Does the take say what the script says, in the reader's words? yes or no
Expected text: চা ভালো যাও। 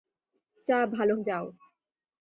yes